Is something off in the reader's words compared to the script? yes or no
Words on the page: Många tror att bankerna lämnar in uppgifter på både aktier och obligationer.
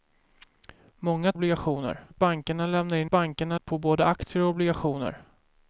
yes